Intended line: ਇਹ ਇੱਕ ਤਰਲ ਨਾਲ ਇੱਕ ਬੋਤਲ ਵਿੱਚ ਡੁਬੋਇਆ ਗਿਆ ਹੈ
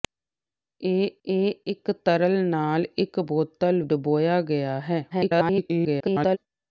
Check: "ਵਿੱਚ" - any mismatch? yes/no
yes